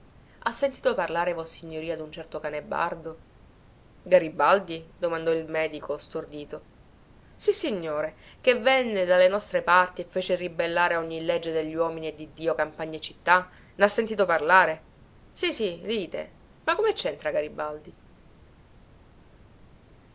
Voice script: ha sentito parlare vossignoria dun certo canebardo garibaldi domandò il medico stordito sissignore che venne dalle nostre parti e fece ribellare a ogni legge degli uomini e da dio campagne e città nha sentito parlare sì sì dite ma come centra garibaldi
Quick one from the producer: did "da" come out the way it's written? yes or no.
no